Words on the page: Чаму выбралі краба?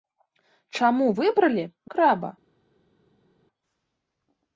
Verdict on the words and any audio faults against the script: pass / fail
pass